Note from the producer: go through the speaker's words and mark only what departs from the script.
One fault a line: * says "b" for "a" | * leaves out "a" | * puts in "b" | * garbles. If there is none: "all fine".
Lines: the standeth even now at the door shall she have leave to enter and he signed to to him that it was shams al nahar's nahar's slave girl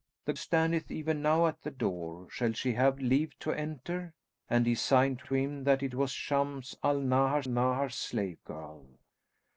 all fine